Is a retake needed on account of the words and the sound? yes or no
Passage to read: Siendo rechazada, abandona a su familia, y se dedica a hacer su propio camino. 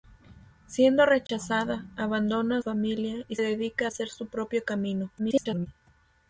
yes